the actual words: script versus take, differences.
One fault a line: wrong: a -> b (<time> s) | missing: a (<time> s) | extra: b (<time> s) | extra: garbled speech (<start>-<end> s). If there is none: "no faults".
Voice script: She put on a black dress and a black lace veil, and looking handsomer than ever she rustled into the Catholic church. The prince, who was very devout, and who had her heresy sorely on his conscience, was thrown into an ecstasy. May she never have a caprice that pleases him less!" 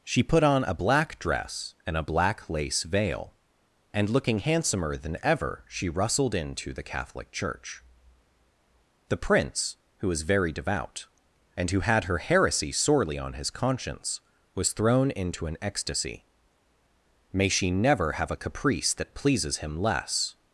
no faults